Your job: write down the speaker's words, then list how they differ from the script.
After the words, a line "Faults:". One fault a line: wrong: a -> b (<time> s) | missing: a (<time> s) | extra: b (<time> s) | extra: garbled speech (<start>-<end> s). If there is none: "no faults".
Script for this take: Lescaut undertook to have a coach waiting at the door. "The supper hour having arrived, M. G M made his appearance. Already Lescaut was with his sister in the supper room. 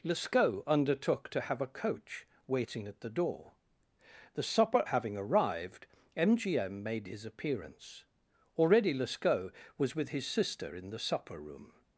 Lescaut undertook to have a coach waiting at the door. "The supper having arrived, M. G M made his appearance. Already Lescaut was with his sister in the supper room.
Faults:
missing: hour (4.8 s)